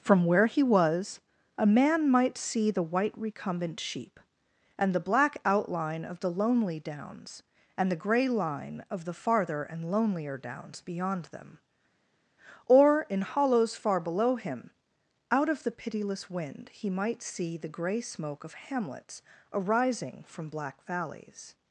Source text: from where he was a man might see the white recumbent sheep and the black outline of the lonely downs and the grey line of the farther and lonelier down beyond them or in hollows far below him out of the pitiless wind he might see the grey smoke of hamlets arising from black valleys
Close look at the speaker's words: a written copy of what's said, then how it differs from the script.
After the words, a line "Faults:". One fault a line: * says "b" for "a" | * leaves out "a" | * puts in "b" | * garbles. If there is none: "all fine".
from where he was a man might see the white recumbent sheep and the black outline of the lonely downs and the grey line of the farther and lonelier downs beyond them or in hollows far below him out of the pitiless wind he might see the grey smoke of hamlets arising from black valleys
Faults:
* says "downs" for "down"